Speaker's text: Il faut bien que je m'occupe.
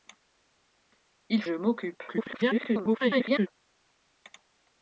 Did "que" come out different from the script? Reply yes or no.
yes